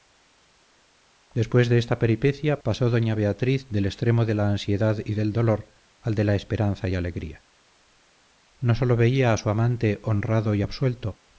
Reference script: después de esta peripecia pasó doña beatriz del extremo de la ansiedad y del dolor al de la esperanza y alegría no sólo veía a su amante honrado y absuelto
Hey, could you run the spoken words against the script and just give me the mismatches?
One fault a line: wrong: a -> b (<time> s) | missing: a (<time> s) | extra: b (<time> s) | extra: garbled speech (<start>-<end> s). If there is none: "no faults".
no faults